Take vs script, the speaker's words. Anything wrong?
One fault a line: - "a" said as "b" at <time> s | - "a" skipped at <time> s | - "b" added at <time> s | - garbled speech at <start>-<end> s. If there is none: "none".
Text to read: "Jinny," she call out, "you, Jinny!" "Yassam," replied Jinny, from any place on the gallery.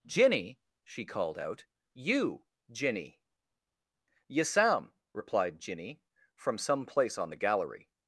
- "call" said as "called" at 1.1 s
- "any" said as "some" at 6.6 s